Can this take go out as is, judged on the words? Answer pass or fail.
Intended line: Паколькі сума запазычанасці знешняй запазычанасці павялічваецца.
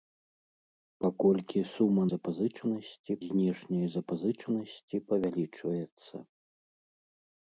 pass